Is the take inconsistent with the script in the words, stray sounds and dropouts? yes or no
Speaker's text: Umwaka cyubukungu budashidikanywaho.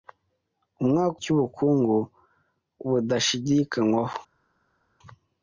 no